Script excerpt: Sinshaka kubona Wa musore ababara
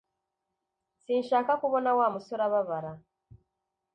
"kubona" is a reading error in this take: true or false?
false